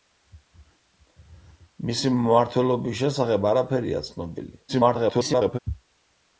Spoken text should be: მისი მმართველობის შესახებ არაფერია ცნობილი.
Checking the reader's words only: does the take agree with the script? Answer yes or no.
no